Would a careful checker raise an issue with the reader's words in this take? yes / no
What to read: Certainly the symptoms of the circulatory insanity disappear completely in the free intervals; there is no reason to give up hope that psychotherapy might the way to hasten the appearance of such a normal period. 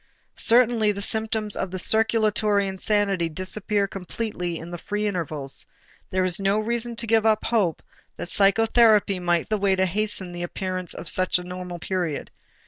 no